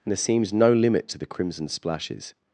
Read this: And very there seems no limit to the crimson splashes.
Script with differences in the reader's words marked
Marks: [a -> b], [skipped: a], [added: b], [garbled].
And [skipped: very] there seems no limit to the crimson splashes.